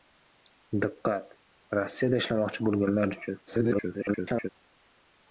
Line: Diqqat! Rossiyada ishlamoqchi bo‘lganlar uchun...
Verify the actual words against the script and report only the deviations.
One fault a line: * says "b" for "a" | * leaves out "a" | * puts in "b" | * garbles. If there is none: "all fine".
* garbles